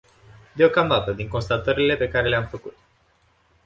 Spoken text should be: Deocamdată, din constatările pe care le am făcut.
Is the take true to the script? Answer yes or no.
yes